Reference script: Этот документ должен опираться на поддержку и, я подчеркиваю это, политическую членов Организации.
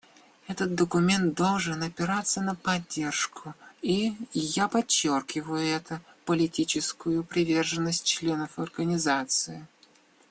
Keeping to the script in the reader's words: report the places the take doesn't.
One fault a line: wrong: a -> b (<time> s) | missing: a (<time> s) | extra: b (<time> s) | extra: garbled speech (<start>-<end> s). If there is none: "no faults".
extra: приверженность (7.2 s)